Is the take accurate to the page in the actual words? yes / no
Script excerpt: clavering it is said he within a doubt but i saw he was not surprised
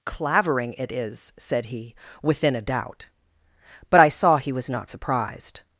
yes